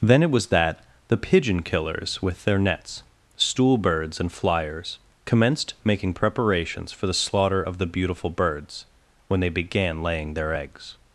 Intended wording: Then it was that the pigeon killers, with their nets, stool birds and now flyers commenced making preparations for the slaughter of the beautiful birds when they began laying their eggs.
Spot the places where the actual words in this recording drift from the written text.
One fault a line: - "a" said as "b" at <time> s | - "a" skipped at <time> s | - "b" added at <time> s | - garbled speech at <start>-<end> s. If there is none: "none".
- "now" skipped at 4.3 s